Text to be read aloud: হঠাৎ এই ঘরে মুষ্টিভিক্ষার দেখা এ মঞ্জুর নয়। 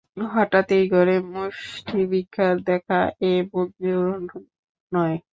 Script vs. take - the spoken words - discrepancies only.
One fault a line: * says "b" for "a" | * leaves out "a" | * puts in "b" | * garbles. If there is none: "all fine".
all fine